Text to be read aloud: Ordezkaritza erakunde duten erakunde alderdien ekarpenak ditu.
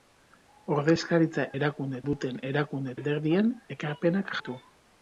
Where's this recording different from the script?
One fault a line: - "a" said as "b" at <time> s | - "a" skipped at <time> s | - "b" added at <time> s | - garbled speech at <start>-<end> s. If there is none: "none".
none